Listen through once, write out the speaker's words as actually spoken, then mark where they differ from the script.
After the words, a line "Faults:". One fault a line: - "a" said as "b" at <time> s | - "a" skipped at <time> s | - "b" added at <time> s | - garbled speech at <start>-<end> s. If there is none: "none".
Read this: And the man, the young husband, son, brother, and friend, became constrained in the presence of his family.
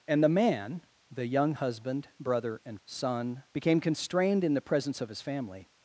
And the man, the young husband, brother, and son, became constrained in the presence of his family.
Faults:
- "son" skipped at 2.1 s
- "friend" said as "son" at 2.8 s